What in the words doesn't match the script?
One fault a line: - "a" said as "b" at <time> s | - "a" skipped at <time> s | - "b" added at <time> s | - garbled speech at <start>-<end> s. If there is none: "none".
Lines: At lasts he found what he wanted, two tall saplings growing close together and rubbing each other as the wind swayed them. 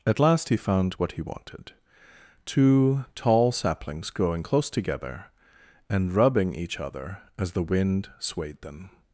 - "lasts" said as "last" at 0.2 s